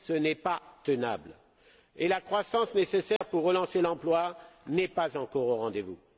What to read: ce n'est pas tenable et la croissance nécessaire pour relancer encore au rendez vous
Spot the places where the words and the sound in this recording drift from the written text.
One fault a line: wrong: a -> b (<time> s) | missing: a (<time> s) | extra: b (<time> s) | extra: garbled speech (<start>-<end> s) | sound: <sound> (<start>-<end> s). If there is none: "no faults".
sound: dropout (3.2-3.2 s)
extra: l'emploi n'est pas (3.8 s)